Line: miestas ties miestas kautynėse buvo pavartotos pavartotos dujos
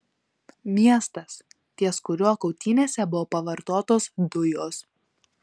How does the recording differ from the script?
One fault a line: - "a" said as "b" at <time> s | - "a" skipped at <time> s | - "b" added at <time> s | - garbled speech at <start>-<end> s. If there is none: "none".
- "miestas" said as "kuriuo" at 2.1 s
- "pavartotos" skipped at 4.1 s